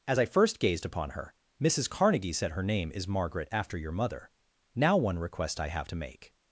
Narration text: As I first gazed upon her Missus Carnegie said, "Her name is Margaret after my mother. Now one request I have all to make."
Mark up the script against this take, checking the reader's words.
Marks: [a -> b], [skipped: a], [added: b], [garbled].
As I first gazed upon her Missus Carnegie said, "Her name is Margaret after [my -> your] mother. Now one request I have [skipped: all] to make."